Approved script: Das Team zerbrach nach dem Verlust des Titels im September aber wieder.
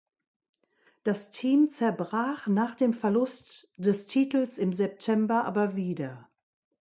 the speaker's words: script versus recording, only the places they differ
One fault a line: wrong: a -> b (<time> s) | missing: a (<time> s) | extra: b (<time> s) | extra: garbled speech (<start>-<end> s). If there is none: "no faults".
no faults